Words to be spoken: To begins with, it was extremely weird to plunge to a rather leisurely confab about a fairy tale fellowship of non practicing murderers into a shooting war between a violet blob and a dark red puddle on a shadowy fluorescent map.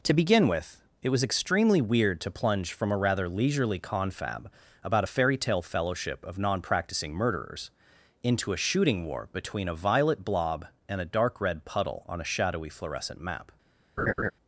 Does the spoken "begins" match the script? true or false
false